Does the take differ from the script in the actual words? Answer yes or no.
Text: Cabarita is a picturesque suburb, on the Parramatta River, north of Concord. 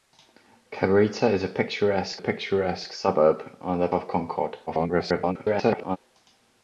yes